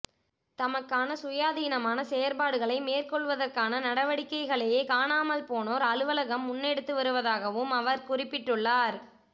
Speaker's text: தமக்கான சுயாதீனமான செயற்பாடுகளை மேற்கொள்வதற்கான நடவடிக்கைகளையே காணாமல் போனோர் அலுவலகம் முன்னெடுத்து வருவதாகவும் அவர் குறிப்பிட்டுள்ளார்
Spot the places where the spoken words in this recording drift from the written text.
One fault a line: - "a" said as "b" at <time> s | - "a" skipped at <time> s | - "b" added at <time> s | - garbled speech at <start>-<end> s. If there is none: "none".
none